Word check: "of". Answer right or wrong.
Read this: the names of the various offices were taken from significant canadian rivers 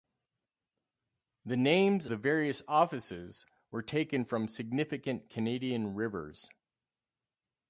wrong